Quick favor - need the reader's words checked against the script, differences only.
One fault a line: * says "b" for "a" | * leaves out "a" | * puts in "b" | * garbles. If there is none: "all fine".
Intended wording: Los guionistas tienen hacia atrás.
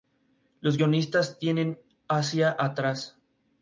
all fine